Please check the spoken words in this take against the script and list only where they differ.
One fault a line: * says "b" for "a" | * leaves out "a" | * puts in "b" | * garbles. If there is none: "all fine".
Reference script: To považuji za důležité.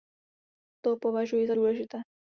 all fine